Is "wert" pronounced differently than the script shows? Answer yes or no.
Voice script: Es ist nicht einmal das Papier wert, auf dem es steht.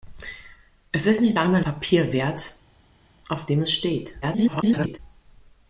no